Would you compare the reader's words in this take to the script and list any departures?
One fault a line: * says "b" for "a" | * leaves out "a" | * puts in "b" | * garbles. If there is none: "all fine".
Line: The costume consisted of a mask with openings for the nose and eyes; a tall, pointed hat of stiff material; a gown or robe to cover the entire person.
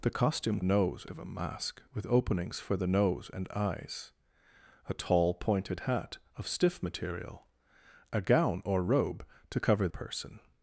* says "nose" for "consisted"
* leaves out "the entire"